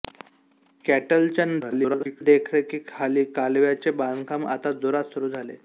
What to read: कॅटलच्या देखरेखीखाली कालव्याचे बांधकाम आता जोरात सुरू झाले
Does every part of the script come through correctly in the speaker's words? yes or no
no